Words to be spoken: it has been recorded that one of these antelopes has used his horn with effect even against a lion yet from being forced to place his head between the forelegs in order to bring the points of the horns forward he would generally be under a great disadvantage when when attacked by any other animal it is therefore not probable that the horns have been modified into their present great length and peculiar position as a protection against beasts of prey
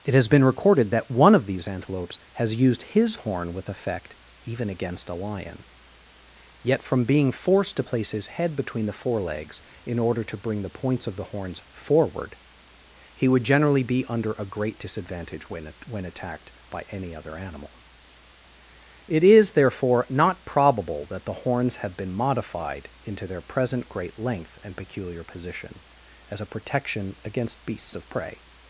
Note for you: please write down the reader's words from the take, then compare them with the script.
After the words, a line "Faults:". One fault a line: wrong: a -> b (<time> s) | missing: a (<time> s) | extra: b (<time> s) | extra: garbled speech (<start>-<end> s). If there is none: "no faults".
it has been recorded that one of these antelopes has used his horn with effect even against a lion yet from being forced to place his head between the forelegs in order to bring the points of the horns forward he would generally be under a great disadvantage when when attacked by any other animal it is therefore not probable that the horns have been modified into their present great length and peculiar position as a protection against beasts of prey
Faults:
no faults